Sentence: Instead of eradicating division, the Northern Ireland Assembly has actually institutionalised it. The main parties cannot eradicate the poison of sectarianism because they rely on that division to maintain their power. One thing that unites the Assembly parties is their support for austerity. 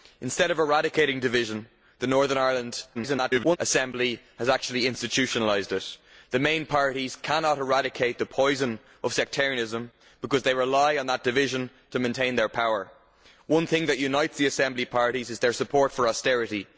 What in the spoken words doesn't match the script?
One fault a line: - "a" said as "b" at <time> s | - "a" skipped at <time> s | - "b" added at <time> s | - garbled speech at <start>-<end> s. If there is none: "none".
- garbled speech at 2.9-3.6 s